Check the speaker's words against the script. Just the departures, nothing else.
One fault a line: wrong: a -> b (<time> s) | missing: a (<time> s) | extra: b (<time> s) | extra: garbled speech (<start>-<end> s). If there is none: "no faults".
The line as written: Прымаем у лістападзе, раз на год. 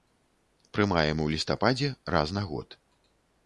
no faults